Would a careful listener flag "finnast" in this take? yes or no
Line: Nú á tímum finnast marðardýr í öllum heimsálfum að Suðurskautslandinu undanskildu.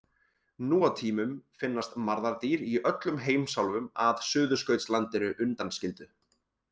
no